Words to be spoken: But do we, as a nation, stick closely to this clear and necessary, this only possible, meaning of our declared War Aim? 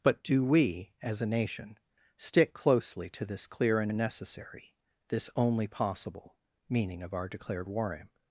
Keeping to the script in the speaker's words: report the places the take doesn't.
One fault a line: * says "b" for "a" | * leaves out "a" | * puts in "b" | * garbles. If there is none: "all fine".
* puts in "and"